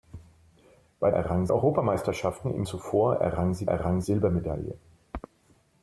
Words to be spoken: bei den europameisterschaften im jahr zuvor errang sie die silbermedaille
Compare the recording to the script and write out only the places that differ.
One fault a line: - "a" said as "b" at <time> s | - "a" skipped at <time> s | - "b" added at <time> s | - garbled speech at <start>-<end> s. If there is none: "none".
- "den" said as "errang" at 1.1 s
- "jahr" skipped at 2.6 s
- "die" said as "errang" at 3.7 s